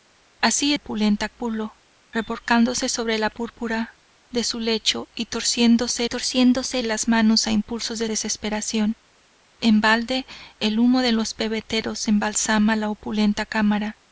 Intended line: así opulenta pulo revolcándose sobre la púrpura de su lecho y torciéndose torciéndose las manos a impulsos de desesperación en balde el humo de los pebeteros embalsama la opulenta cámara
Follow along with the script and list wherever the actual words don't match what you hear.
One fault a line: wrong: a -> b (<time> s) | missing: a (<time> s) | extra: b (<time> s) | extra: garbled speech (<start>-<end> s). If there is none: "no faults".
no faults